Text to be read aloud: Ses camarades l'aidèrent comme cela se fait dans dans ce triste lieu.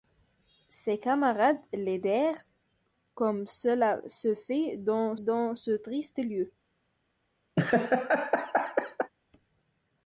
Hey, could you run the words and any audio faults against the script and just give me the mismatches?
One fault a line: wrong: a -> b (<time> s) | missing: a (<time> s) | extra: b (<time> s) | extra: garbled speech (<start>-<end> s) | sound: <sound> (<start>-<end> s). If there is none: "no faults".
sound: laugh (7.6-9.1 s)